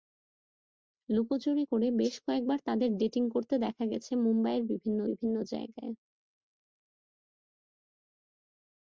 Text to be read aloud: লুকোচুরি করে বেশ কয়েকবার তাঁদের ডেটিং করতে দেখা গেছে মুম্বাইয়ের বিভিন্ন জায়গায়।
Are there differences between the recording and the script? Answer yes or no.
yes